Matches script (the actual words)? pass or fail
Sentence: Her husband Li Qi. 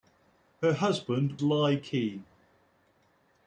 pass